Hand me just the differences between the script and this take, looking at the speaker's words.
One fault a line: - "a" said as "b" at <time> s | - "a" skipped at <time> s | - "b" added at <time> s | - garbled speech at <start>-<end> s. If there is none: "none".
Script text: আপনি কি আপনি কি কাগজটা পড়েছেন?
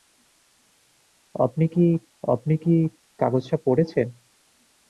none